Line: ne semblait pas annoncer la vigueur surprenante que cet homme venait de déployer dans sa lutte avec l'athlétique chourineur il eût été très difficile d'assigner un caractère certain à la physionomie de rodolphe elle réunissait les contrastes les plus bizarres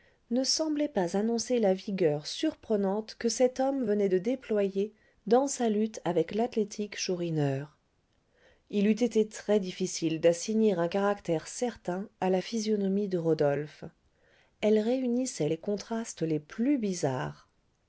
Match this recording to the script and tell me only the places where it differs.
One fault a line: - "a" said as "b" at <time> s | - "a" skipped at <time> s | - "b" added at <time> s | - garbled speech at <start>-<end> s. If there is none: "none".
none